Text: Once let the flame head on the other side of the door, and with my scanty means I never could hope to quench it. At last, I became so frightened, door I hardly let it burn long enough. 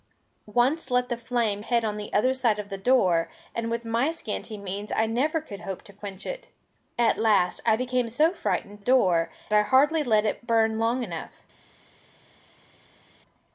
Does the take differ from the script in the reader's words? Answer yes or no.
no